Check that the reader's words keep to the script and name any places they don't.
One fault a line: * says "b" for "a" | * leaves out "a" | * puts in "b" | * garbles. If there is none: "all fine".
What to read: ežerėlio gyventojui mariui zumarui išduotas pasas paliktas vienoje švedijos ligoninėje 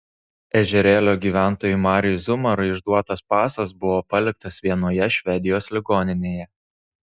* puts in "buvo"